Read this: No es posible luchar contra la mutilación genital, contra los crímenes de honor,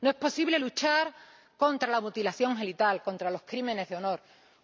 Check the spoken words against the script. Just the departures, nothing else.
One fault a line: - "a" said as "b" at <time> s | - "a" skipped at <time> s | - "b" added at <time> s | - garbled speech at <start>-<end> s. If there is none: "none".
none